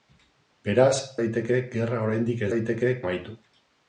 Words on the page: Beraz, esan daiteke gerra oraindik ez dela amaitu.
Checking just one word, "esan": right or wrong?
wrong